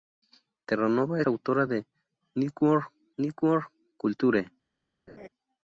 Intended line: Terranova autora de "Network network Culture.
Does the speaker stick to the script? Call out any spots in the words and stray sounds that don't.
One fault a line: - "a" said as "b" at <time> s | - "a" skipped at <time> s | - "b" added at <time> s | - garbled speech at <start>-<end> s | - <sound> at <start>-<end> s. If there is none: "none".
- laugh at 5.1-5.3 s